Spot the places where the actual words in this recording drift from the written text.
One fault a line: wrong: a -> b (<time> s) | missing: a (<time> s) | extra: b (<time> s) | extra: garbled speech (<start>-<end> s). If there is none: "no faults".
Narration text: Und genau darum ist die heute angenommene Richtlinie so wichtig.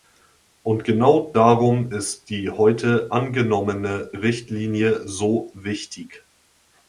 no faults